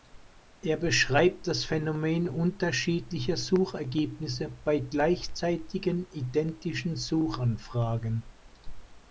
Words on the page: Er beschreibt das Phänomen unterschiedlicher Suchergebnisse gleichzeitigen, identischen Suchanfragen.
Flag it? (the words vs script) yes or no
yes